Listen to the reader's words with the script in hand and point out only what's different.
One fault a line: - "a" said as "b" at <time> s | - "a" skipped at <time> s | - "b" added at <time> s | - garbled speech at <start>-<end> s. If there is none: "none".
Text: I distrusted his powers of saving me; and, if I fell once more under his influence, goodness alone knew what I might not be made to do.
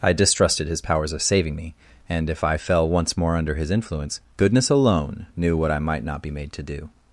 none